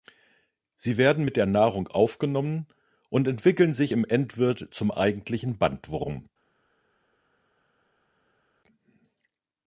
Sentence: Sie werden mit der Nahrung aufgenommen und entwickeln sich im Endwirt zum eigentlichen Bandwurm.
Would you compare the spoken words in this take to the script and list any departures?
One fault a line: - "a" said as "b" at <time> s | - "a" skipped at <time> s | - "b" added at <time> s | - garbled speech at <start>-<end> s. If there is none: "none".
none